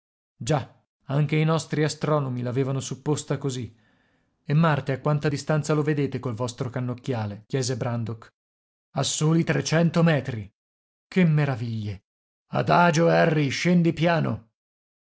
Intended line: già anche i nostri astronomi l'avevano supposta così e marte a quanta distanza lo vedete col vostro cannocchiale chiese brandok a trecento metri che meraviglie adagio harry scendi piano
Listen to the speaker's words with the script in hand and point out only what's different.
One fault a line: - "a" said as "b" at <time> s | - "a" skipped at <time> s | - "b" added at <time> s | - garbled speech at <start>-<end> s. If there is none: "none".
- "soli" added at 9.0 s